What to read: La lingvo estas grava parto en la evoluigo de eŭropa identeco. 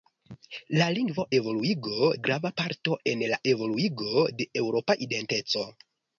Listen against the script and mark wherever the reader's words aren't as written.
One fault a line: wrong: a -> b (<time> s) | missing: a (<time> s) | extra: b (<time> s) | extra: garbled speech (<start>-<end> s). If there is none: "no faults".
wrong: estas -> evoluigo (1.4 s)